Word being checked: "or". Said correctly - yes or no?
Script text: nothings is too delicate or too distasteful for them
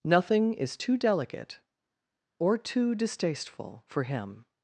yes